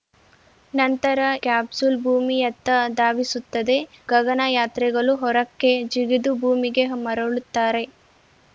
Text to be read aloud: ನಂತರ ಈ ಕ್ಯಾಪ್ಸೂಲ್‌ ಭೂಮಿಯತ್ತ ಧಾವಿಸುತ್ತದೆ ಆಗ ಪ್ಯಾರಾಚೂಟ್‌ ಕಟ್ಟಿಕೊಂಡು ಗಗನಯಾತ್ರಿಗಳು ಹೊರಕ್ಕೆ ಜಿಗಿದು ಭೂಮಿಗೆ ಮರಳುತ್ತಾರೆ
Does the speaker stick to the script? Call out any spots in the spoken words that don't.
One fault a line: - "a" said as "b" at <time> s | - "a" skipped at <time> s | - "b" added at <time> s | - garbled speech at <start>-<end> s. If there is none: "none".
- "ಈ" skipped at 1.2 s
- "ಆಗ ಪ್ಯಾರಾಚೂಟ್ ಕಟ್ಟಿಕೊಂಡು" skipped at 3.8 s